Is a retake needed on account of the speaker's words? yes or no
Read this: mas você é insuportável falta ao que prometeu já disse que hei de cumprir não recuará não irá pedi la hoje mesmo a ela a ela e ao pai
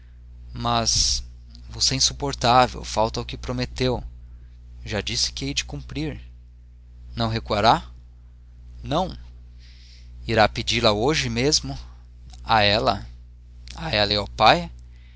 no